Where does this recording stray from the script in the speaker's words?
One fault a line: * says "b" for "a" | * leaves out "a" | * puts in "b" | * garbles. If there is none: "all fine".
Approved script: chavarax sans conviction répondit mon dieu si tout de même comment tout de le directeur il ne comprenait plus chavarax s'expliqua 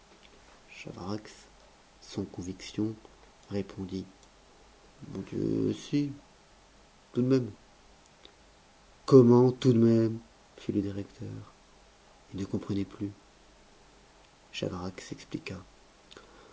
* puts in "même fit"